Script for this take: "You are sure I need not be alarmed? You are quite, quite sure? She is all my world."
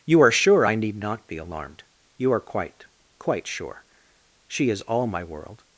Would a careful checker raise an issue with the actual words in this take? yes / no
no